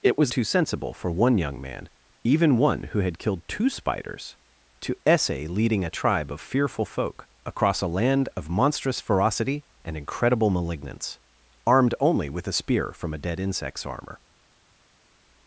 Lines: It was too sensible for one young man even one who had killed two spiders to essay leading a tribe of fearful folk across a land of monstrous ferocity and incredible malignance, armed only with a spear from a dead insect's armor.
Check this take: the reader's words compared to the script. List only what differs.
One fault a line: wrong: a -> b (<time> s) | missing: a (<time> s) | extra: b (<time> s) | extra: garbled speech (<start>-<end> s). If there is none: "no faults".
no faults